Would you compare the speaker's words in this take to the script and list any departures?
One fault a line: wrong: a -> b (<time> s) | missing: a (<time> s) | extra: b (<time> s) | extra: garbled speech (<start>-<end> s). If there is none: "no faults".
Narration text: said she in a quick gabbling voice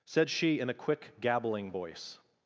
no faults